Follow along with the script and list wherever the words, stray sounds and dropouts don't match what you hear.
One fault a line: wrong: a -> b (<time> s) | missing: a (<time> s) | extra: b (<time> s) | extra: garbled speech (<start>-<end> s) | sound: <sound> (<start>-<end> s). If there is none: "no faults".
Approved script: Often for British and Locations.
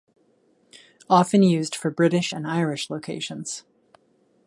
extra: used (1.4 s)
extra: Irish (2.5 s)